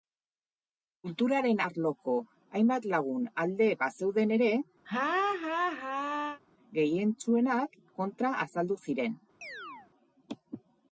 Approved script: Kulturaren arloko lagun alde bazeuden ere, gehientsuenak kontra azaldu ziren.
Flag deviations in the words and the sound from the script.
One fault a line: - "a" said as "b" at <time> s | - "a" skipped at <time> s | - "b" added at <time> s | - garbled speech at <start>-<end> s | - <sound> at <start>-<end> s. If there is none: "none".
- "hainbat" added at 2.6 s
- laugh at 4.9-6.4 s
- chirp at 9.4-9.9 s